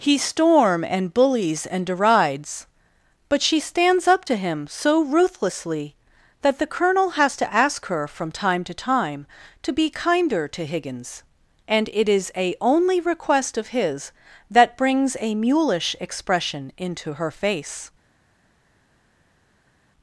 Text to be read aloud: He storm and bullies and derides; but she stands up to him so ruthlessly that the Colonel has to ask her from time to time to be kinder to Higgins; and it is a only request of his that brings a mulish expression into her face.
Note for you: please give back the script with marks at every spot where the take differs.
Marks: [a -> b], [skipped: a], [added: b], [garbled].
He storm and bullies and derides; but she stands up to him so ruthlessly that the Colonel has to ask her from time to time to be kinder to Higgins; and it is a only request of his that brings a mulish expression into her face.